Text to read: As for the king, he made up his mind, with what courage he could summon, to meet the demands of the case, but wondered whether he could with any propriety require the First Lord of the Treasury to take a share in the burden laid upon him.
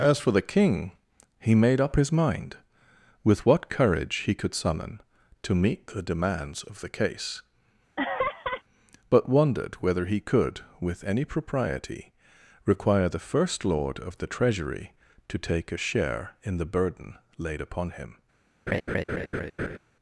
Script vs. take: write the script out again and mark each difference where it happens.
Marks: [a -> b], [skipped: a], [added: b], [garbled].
As for the king, he made up his mind, with what courage he could summon, to meet the demands of the case, but wondered whether he could with any propriety require the First Lord of the Treasury to take a share in the burden laid upon him.